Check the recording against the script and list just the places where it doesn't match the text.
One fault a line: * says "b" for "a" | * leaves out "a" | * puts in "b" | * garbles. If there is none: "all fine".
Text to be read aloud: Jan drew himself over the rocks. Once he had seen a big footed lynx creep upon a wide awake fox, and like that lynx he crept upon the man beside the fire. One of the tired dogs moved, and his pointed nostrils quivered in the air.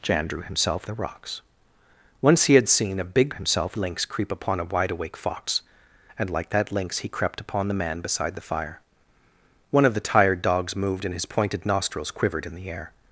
* leaves out "over"
* says "himself" for "footed"